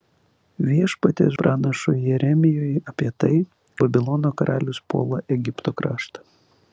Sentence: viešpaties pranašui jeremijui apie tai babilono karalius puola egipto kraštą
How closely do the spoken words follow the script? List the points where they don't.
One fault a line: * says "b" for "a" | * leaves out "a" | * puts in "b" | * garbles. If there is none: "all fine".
all fine